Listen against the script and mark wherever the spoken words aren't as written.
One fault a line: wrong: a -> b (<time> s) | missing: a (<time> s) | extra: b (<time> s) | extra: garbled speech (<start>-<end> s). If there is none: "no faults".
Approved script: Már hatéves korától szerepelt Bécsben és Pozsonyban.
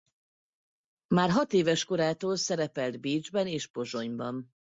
no faults